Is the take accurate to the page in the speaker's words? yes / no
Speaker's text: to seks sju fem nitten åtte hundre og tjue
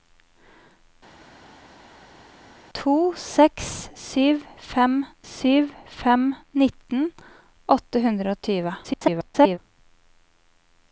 no